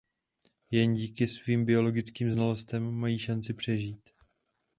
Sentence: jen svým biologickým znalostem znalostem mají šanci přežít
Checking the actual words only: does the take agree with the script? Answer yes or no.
no